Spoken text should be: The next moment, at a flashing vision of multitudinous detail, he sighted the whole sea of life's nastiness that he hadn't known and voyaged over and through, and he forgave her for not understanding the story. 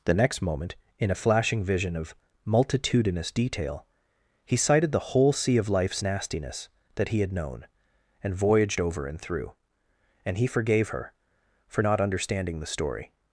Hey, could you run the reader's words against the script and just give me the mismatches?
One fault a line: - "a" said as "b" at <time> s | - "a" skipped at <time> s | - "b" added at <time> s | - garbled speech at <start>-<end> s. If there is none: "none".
- "at" said as "in" at 1.0 s
- "hadn't" said as "had" at 7.2 s